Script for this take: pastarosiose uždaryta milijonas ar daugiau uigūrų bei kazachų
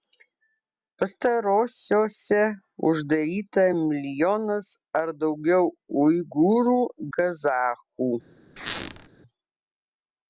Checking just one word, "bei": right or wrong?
wrong